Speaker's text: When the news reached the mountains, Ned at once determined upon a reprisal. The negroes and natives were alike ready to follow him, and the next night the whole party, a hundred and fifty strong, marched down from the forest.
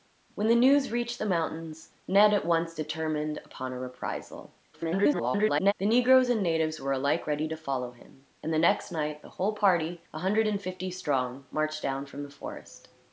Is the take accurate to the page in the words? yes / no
no